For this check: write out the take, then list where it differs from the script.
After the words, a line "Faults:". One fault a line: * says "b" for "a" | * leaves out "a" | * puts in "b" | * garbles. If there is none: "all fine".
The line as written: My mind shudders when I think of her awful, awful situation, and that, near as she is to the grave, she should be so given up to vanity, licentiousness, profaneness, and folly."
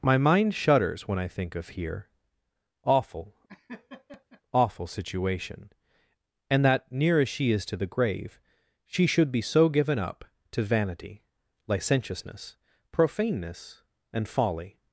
My mind shudders when I think of here awful, awful situation, and that, near as she is to the grave, she should be so given up to vanity, licentiousness, profaneness, and folly."
Faults:
* says "here" for "her"